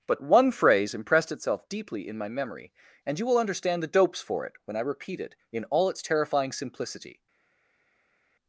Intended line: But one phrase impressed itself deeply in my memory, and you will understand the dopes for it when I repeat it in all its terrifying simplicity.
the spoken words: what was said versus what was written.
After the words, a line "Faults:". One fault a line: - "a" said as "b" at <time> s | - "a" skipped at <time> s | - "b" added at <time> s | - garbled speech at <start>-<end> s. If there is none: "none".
But one phrase impressed itself deeply in my memory, and you will understand the dopes for it when I repeat it in all its terrifying simplicity.
Faults:
none